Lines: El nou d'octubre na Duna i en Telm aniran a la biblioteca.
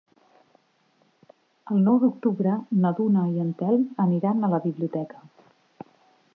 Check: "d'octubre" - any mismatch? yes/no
no